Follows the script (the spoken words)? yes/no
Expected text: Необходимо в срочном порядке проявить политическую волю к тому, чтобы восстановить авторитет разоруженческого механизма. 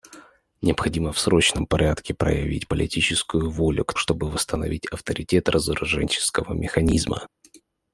no